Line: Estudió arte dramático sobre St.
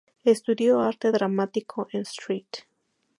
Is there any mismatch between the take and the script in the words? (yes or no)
yes